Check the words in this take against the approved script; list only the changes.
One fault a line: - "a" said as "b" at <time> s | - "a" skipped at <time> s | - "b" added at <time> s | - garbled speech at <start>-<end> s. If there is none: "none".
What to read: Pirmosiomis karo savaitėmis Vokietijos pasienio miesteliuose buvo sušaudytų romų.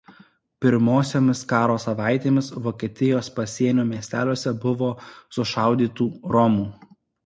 none